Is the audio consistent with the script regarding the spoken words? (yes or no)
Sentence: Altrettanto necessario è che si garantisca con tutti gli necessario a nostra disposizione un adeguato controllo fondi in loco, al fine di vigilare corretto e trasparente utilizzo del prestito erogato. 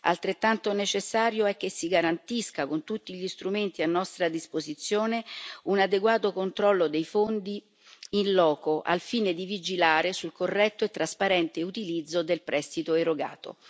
no